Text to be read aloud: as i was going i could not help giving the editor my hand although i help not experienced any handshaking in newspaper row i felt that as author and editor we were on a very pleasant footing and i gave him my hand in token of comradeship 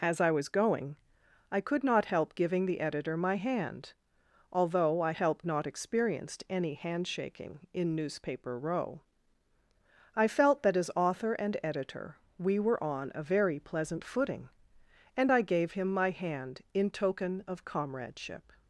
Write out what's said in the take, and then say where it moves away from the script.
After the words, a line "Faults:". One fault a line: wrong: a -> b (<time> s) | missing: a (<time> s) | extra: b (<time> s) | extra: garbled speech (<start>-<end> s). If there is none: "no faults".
as i was going i could not help giving the editor my hand although i help not experienced any handshaking in newspaper row i felt that as author and editor we were on a very pleasant footing and i gave him my hand in token of comradeship
Faults:
no faults